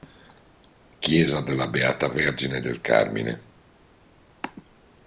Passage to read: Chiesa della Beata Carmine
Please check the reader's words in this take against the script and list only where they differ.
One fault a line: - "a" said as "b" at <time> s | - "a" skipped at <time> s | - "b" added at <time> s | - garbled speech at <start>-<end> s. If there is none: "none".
- "Vergine del" added at 2.1 s